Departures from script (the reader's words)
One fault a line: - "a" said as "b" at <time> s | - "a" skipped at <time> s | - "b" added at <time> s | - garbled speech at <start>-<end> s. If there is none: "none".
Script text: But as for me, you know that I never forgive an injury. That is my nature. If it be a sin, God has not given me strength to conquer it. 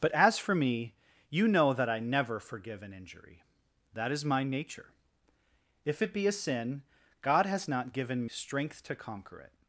- "me" skipped at 8.3 s